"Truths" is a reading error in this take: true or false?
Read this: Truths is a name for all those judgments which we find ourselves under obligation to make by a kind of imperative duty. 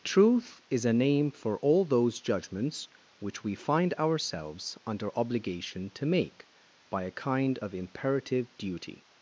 true